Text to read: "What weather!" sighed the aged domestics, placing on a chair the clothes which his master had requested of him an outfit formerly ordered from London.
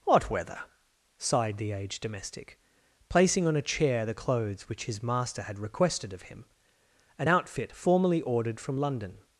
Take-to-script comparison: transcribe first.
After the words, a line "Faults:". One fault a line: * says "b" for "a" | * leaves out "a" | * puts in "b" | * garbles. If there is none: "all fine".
"What weather!" sighed the aged domestic, placing on a chair the clothes which his master had requested of him an outfit formerly ordered from London.
Faults:
* says "domestic" for "domestics"